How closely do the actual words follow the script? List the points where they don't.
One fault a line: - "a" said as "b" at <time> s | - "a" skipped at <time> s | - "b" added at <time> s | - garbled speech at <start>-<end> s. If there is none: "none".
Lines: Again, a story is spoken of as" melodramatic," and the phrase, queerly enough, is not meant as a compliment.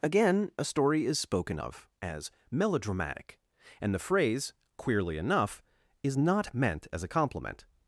none